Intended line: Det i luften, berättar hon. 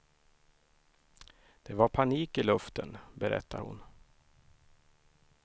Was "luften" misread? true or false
false